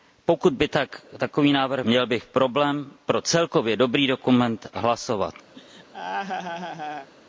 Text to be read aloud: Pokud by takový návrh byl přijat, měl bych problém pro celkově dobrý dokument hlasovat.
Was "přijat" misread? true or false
true